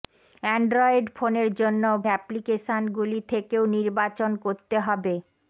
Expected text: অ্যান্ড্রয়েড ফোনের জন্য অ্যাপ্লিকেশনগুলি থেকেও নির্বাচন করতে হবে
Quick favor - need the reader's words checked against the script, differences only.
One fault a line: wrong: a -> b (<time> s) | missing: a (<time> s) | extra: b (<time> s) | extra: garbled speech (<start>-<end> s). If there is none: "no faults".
no faults